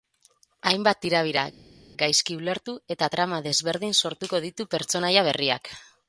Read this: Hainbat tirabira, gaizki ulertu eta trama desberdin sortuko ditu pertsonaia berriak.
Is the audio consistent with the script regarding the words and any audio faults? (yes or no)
yes